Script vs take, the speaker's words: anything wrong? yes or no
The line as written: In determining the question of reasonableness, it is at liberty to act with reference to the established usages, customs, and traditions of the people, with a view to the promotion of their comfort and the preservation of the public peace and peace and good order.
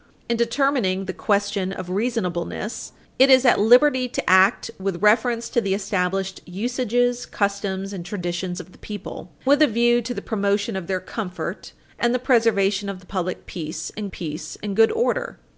no